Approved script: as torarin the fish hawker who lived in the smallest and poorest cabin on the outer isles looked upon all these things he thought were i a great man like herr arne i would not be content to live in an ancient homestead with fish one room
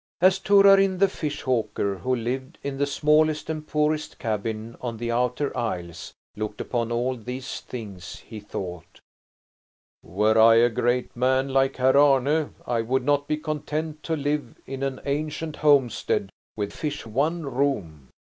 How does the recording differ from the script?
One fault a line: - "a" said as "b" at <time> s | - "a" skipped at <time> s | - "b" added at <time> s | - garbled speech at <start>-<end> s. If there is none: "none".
none